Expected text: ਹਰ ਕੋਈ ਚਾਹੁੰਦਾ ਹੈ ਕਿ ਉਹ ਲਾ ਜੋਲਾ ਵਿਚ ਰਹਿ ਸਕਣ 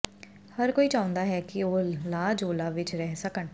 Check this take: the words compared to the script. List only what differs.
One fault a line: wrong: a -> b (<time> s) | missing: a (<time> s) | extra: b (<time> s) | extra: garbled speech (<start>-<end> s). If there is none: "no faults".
no faults